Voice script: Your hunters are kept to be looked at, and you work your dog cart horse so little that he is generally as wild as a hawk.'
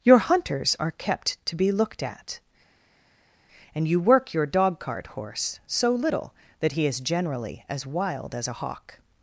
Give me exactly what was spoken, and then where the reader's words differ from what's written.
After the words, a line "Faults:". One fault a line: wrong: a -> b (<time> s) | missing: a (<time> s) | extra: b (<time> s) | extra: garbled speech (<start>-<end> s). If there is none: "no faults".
Your hunters are kept to be looked at, and you work your dog cart horse so little that he is generally as wild as a hawk.'
Faults:
no faults